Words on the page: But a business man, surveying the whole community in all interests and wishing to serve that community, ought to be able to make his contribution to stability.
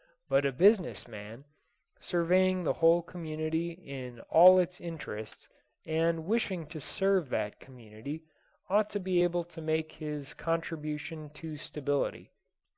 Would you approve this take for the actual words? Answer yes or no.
no